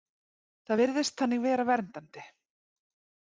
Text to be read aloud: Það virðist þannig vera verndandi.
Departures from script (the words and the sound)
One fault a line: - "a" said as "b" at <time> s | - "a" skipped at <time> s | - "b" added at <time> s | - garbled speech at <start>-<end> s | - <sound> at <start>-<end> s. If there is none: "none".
none